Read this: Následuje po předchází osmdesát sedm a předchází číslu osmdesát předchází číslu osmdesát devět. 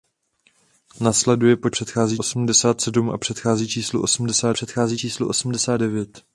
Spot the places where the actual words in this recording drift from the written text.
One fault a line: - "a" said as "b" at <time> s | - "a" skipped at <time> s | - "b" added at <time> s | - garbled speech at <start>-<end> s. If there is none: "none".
none